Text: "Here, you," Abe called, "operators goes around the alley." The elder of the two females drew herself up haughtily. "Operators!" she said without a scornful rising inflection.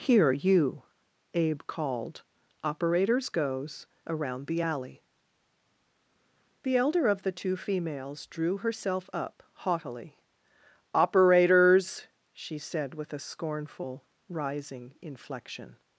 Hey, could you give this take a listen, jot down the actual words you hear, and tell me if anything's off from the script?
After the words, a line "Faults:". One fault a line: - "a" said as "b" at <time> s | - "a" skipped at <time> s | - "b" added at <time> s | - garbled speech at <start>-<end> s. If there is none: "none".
"Here, you," Abe called, "operators goes around the alley." The elder of the two females drew herself up haughtily. "Operators!" she said with a scornful rising inflection.
Faults:
- "without" said as "with" at 12.9 s